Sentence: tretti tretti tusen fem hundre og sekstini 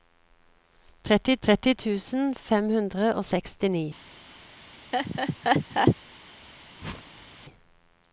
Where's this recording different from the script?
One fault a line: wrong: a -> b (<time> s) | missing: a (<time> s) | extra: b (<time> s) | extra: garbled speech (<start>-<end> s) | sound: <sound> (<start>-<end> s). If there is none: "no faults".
sound: laugh (4.9-6.0 s)
sound: whoosh (6.8-7.5 s)